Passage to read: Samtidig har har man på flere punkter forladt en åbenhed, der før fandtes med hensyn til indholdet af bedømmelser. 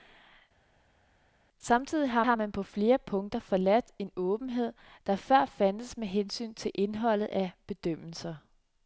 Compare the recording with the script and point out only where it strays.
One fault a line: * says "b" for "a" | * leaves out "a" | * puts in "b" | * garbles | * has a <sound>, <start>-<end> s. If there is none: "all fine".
all fine